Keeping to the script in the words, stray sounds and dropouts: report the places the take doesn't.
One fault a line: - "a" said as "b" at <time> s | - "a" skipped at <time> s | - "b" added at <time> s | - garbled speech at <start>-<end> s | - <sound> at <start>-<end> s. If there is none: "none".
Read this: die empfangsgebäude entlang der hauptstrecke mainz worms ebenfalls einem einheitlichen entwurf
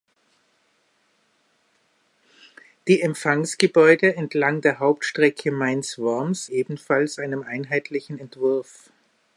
none